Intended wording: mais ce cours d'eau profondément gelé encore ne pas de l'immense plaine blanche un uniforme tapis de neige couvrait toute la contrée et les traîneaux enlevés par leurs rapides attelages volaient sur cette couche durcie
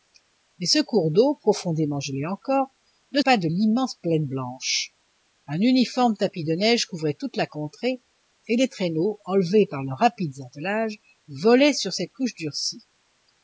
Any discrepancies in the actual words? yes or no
no